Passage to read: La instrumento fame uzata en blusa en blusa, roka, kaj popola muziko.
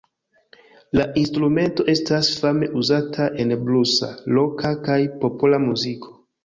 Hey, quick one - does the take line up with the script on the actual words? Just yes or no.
no